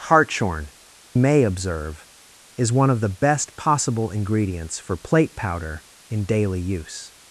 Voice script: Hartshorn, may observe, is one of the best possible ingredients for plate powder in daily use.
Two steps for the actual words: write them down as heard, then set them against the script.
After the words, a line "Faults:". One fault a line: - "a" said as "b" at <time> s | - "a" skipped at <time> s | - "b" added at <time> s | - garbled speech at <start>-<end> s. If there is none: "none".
Hartshorn, may observe, is one of the best possible ingredients for plate powder in daily use.
Faults:
none